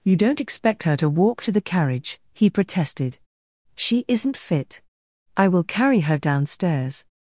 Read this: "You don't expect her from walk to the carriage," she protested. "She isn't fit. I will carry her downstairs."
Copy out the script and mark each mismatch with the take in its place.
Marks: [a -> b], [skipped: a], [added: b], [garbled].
"You don't expect her [from -> to] walk to the carriage," [she -> he] protested. "She isn't fit. I will carry her downstairs."